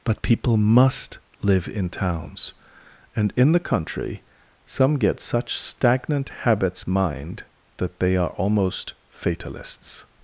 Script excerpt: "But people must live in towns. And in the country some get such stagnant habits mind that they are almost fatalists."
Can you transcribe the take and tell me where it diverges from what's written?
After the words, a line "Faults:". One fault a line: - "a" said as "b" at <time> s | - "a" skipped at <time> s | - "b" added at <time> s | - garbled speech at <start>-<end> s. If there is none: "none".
"But people must live in towns. And in the country some get such stagnant habits mind that they are almost fatalists."
Faults:
none